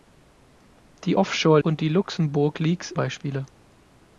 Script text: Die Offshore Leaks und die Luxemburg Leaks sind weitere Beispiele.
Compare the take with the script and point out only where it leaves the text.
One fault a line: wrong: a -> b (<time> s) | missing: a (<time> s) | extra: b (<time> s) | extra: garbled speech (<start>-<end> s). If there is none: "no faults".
missing: Leaks (1.6 s)
missing: sind weitere (2.9 s)